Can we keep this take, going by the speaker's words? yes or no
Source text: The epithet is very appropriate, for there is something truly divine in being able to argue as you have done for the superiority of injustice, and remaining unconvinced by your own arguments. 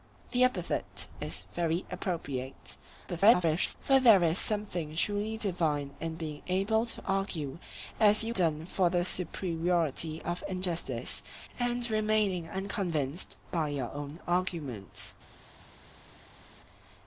no